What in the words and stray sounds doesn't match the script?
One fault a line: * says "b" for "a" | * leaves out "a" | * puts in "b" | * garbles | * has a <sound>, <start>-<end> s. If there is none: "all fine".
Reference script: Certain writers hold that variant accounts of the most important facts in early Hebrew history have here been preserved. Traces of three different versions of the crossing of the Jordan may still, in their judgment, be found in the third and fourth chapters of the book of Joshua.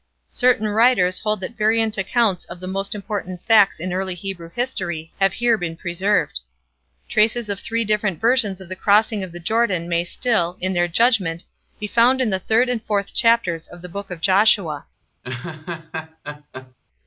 * has a laugh, 15.2-16.7 s